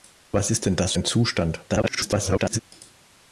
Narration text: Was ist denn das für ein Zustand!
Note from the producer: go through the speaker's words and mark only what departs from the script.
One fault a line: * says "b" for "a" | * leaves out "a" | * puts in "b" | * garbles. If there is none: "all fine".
* leaves out "für"
* garbles